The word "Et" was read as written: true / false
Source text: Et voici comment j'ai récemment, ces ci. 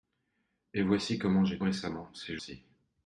true